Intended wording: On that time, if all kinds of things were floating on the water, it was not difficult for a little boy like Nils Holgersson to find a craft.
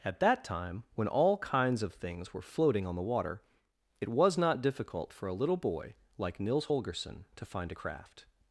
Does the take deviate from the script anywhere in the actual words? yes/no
yes